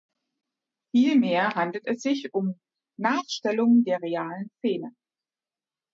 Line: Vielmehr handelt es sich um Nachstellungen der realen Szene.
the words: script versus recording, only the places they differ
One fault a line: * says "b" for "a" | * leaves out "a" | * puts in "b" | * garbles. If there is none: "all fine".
all fine